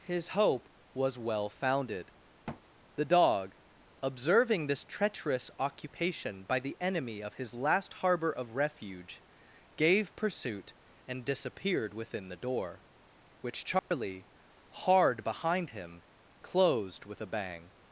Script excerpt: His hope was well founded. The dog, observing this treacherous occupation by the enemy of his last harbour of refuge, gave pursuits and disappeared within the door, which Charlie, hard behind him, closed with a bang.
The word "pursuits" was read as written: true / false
false